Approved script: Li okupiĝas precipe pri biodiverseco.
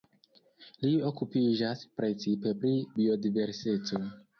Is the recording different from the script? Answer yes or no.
no